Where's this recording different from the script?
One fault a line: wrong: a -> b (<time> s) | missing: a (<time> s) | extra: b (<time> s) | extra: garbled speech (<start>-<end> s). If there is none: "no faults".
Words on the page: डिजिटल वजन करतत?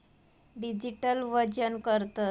no faults